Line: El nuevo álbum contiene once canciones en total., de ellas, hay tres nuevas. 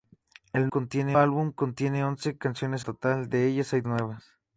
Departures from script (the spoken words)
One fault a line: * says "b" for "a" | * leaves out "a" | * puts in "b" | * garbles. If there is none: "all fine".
* says "contiene" for "nuevo"
* leaves out "en"
* leaves out "tres"